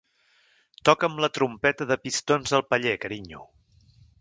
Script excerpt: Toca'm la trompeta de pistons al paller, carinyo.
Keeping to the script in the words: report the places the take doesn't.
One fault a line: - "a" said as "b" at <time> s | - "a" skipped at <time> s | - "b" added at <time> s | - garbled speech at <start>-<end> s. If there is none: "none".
none